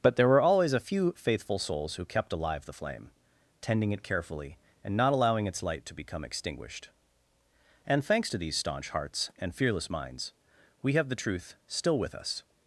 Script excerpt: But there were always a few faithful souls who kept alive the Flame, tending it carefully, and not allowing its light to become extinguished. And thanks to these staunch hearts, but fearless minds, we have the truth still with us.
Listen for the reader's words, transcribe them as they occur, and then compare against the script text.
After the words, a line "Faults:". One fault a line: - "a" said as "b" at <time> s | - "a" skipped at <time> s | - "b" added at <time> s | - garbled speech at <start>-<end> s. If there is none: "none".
But there were always a few faithful souls who kept alive the Flame, tending it carefully, and not allowing its light to become extinguished. And thanks to these staunch hearts, and fearless minds, we have the truth still with us.
Faults:
- "but" said as "and" at 9.4 s